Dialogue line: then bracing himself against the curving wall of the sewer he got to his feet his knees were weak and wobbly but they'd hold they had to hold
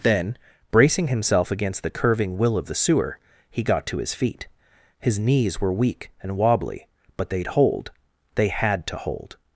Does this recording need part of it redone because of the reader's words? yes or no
yes